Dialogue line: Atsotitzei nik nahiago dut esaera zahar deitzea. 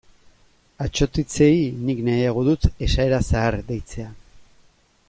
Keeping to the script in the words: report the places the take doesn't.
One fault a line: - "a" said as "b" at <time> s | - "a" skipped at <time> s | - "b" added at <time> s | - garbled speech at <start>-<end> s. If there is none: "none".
none